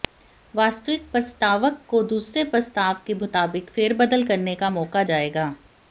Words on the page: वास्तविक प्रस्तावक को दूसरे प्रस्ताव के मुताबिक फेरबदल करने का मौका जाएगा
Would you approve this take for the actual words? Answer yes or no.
yes